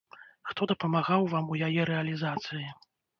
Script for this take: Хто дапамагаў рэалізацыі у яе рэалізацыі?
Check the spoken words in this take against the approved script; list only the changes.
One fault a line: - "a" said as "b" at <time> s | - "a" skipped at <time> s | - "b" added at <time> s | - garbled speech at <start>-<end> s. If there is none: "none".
- "рэалізацыі" said as "вам" at 1.3 s